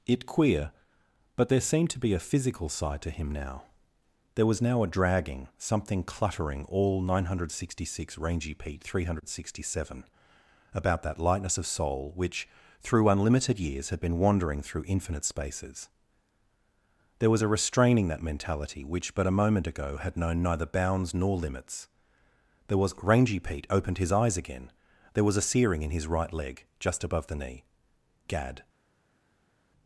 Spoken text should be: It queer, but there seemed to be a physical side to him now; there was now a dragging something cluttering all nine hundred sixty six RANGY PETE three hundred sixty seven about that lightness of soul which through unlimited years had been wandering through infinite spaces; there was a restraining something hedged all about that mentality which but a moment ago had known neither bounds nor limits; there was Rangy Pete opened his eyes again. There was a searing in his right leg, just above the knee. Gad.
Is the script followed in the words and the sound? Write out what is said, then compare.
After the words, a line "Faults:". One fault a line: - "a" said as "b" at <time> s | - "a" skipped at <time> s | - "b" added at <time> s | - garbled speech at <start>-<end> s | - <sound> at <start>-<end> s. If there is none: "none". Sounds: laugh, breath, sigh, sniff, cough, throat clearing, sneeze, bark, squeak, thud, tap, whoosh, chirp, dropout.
It queer, but there seemed to be a physical side to him now; there was now a dragging something cluttering all nine hundred sixty six RANGY PETE three hundred sixty seven about that lightness of soul which through unlimited years had been wandering through infinite spaces; there was a restraining that mentality which but a moment ago had known neither bounds nor limits; there was Rangy Pete opened his eyes again. There was a searing in his right leg, just above the knee. Gad.
Faults:
- "something hedged all about" skipped at 18.1 s